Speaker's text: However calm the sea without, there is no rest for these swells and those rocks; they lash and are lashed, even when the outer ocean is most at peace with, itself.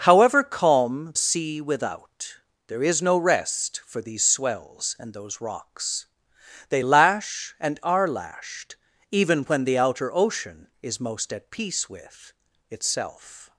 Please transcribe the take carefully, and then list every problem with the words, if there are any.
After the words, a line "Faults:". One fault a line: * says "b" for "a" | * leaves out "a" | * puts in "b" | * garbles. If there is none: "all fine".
However calm sea without, there is no rest for these swells and those rocks; they lash and are lashed, even when the outer ocean is most at peace with, itself.
Faults:
* leaves out "the"